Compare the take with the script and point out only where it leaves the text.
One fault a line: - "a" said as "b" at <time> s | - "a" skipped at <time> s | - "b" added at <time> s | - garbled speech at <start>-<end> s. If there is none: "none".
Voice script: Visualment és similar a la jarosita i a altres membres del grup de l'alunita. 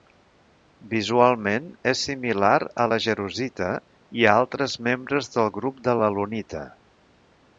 none